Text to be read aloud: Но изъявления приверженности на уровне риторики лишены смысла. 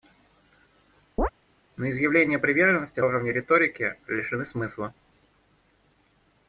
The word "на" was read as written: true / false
false